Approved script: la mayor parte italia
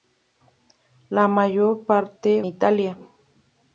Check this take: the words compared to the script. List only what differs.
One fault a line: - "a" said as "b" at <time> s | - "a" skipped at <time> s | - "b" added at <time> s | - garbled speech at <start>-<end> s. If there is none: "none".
none